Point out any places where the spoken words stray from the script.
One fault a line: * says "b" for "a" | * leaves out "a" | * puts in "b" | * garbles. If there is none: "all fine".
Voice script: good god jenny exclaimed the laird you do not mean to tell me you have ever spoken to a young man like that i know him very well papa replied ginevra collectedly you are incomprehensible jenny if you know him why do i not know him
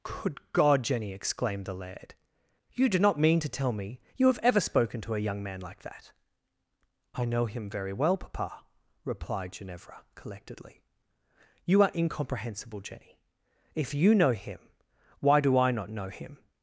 all fine